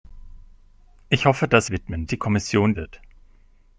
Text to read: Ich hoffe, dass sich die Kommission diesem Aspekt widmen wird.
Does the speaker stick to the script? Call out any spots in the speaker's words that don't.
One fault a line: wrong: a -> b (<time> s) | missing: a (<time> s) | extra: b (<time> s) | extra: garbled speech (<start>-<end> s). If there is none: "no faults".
wrong: sich -> widmen (1.7 s)
missing: diesem Aspekt widmen (2.7 s)